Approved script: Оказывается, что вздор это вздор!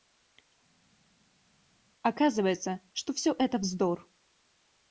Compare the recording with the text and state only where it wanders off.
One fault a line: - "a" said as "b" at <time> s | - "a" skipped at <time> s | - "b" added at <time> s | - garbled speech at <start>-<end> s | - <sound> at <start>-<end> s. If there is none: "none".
- "вздор" said as "все" at 3.1 s